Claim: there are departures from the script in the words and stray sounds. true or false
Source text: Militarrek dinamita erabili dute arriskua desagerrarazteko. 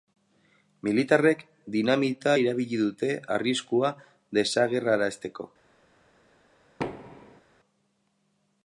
true